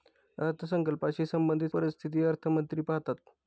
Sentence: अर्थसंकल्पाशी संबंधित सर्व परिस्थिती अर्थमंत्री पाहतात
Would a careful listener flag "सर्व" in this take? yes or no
yes